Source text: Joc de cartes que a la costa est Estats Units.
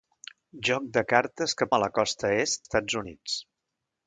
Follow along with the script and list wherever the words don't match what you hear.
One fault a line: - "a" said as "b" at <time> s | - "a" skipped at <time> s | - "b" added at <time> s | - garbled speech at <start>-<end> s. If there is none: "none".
none